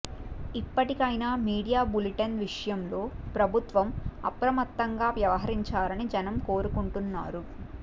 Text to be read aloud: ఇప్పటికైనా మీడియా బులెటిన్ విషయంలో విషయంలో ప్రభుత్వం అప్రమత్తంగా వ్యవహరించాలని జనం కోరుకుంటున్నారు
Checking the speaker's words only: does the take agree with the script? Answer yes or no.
no